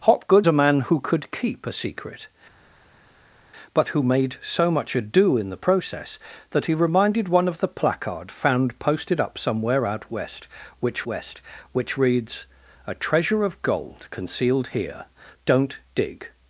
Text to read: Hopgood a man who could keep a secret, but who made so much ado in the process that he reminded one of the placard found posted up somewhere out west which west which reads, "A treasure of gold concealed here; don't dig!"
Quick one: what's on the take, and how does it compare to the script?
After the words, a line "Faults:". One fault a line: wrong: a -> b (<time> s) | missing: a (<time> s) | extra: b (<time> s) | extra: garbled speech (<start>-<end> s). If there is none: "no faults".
Hopgood a man who could keep a secret, but who made so much ado in the process that he reminded one of the placard found posted up somewhere out west which west which reads, "A treasure of gold concealed here; don't dig!"
Faults:
no faults